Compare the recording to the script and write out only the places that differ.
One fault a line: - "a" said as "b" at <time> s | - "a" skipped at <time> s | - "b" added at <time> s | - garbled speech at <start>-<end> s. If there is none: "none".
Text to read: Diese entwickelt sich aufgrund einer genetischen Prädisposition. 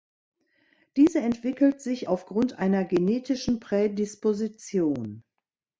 none